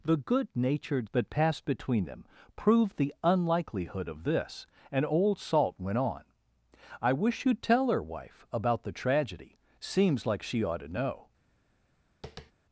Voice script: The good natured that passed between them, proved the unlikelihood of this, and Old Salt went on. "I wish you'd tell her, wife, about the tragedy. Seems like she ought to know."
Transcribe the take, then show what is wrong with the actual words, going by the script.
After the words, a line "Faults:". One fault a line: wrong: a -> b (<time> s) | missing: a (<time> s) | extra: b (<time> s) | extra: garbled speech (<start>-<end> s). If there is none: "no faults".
The good natured that passed between them, proved the unlikelihood of this, and Old Salt went on. "I wish you'd tell her, wife, about the tragedy. Seems like she ought to know."
Faults:
no faults